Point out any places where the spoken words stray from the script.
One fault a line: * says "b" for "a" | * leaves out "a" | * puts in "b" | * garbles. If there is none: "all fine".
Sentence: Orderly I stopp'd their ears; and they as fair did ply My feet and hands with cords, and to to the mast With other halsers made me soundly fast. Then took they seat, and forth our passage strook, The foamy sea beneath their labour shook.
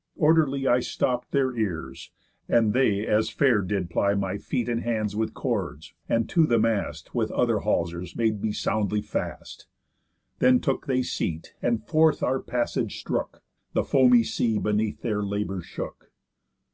* leaves out "to"